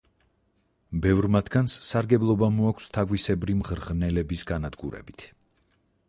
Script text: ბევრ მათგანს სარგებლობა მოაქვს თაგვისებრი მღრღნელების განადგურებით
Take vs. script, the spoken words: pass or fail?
pass